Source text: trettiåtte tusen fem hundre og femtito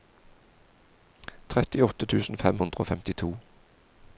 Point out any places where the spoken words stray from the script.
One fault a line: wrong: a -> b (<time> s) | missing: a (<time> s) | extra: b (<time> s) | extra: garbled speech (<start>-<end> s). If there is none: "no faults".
no faults